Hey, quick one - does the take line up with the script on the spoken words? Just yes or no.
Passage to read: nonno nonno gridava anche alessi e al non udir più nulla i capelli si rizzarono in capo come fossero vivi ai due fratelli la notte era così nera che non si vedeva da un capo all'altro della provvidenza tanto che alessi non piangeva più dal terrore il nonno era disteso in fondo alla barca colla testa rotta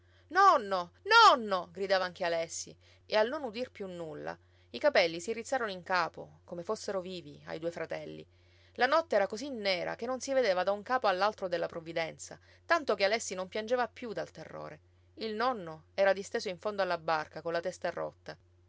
yes